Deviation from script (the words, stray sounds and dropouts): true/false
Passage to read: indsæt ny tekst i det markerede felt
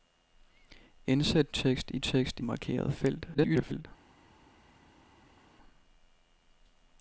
true